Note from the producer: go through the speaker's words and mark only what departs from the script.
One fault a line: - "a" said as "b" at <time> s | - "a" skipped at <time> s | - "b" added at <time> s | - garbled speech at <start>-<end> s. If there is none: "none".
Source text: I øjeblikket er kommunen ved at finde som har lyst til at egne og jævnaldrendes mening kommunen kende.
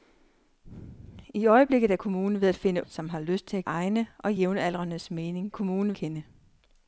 none